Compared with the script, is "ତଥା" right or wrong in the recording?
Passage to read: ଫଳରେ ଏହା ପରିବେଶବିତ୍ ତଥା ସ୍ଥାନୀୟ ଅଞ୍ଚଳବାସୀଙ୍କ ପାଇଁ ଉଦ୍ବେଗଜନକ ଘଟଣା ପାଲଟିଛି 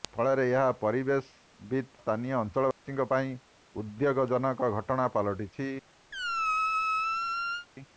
wrong